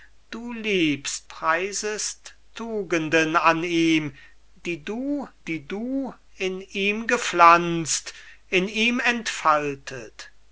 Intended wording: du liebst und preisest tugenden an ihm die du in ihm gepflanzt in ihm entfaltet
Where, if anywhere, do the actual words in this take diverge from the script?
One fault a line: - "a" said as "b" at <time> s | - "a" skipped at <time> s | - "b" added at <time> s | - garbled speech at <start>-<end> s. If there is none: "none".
- "und" skipped at 1.3 s
- "die du" added at 5.5 s